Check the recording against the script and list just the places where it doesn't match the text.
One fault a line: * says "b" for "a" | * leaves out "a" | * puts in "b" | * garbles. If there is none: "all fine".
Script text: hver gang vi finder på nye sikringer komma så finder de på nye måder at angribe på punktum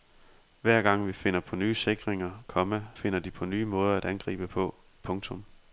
* leaves out "så"